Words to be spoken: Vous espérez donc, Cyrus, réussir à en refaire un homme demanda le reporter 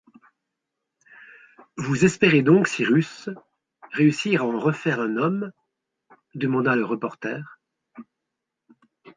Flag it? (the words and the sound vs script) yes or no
no